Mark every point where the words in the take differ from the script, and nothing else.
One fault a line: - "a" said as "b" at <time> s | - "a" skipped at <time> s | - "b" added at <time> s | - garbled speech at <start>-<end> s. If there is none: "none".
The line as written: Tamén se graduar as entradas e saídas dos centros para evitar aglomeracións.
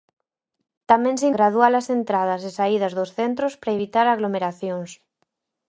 none